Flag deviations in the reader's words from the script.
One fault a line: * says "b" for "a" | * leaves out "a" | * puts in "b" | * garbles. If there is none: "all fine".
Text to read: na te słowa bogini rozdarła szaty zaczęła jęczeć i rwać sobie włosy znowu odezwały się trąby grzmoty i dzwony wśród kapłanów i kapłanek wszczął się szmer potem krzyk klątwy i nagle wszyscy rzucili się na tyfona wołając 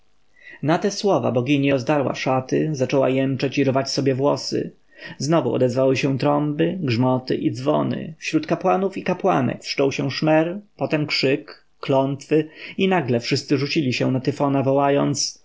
all fine